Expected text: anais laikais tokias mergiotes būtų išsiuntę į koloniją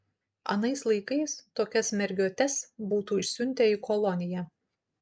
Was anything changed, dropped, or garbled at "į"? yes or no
no